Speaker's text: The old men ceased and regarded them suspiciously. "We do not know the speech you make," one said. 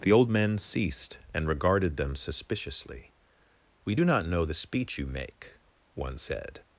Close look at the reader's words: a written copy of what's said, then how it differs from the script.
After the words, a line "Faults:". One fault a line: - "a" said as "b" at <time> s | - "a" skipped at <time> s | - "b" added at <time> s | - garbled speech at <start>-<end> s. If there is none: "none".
The old men ceased and regarded them suspiciously. "We do not know the speech you make," one said.
Faults:
none